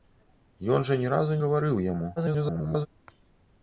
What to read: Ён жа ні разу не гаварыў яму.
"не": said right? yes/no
no